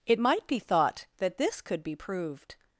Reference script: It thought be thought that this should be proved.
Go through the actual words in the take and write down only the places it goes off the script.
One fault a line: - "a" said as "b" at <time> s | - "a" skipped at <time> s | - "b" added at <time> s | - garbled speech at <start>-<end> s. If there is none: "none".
- "thought" said as "might" at 0.2 s
- "should" said as "could" at 1.6 s